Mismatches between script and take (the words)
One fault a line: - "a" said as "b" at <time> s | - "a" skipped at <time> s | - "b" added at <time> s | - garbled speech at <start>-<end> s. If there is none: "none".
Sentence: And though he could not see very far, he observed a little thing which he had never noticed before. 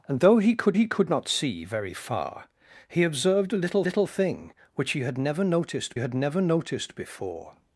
- "he could" added at 0.7 s
- "little" added at 3.8 s
- "had never noticed" added at 6.0 s